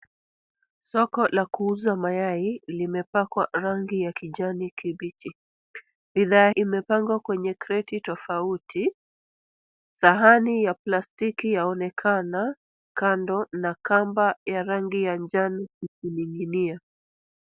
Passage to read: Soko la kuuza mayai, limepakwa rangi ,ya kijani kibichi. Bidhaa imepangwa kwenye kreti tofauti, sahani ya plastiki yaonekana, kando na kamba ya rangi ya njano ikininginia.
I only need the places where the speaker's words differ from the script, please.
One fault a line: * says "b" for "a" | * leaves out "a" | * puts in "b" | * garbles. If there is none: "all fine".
all fine